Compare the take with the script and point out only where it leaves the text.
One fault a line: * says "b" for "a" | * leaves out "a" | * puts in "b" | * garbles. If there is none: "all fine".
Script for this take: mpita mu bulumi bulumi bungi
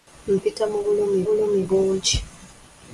all fine